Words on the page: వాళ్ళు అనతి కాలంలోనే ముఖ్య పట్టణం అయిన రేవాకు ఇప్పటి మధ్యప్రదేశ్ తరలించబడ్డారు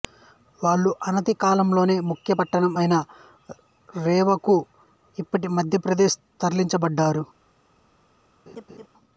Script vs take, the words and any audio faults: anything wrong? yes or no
yes